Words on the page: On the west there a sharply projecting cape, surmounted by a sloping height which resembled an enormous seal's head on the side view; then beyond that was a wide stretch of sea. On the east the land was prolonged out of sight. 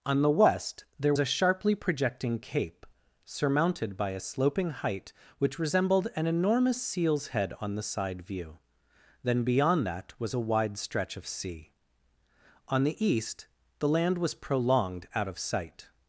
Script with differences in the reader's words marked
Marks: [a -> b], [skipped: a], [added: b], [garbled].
On the west there a sharply projecting cape, surmounted by a sloping height which resembled an enormous seal's head on the side view; then beyond that was a wide stretch of sea. On the east the land was prolonged out of sight.